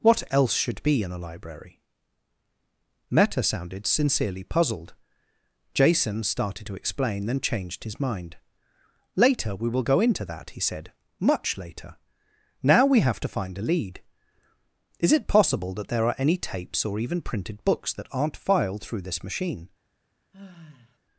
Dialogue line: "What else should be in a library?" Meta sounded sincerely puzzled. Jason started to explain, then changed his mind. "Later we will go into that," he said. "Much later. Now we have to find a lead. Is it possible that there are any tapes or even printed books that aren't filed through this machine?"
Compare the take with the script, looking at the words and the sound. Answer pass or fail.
fail